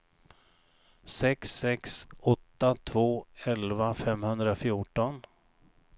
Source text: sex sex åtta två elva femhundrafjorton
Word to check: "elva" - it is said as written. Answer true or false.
true